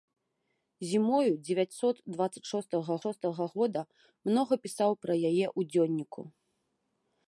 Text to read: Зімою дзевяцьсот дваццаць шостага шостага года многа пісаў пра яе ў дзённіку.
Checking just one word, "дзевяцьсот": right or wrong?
right